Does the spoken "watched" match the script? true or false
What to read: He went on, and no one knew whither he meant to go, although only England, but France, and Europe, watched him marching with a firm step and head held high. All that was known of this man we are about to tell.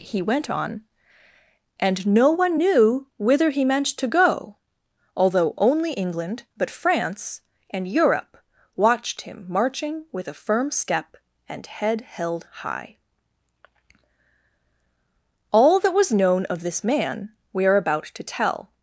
true